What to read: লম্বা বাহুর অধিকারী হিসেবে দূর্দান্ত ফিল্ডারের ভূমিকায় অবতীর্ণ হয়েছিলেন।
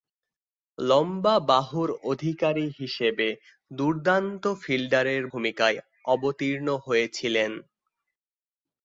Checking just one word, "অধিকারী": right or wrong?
right